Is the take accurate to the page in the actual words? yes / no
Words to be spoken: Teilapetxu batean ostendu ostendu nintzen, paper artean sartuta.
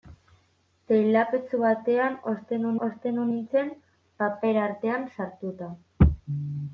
yes